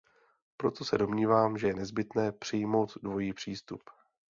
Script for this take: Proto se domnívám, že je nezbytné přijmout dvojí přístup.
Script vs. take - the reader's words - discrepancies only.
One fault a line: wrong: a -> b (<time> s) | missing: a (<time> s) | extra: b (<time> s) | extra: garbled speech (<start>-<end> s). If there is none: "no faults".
no faults